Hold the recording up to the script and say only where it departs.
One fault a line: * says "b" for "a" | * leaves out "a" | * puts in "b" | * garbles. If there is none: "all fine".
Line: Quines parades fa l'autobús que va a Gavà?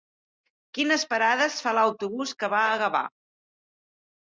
all fine